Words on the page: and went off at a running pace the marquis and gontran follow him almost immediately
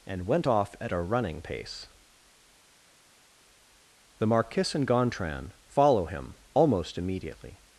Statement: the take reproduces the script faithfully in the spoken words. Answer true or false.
true